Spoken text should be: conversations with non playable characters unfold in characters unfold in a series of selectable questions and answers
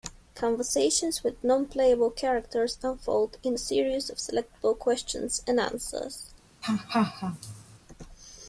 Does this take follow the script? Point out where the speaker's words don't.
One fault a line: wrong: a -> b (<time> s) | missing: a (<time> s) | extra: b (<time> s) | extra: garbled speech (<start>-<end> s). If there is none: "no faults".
missing: characters unfold in (3.5 s)